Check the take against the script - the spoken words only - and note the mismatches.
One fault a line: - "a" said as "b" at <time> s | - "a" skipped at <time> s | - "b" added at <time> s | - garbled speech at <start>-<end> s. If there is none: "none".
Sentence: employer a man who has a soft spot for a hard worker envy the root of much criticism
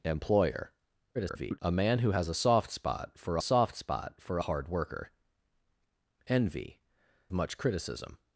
- garbled speech at 1.1-1.6 s
- "soft spot for" added at 3.4 s
- "the root of" skipped at 6.8 s